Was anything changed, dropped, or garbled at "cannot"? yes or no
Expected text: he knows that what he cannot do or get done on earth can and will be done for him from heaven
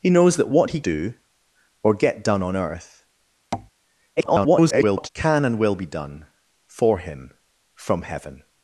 yes